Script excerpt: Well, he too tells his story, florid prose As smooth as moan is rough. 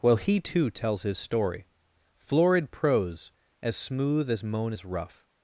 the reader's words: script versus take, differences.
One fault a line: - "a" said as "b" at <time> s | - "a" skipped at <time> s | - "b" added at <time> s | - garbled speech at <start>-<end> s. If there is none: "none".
none